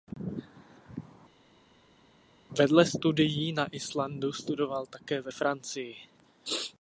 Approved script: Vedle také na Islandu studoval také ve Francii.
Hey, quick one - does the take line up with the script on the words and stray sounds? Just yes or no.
no